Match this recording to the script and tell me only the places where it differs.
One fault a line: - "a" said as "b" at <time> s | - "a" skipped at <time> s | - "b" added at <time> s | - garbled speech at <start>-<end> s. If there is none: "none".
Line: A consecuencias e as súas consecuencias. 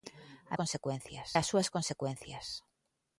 none